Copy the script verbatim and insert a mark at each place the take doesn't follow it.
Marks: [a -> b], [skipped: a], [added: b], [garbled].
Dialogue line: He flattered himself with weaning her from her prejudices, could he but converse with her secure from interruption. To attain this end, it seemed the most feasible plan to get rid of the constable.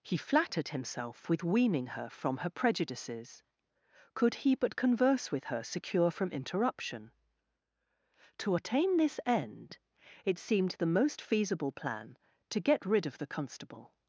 He flattered himself with weaning her from her prejudices, could he but converse with her secure from interruption. To attain this end, it seemed the most feasible plan to get rid of the constable.